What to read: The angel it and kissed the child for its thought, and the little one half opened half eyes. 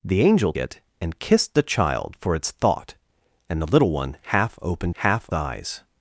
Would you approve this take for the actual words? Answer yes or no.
yes